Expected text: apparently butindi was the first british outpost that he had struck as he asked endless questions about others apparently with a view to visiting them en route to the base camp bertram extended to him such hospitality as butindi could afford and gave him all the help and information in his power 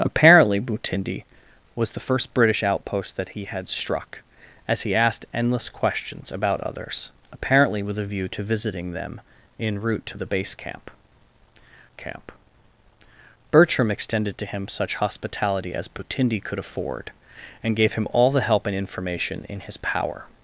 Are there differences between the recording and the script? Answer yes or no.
yes